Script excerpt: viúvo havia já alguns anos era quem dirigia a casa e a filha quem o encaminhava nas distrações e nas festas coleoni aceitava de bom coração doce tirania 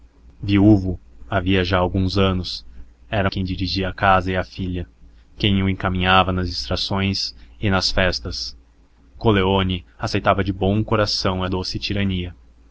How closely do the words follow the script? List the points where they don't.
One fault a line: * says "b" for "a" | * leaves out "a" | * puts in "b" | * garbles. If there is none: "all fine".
all fine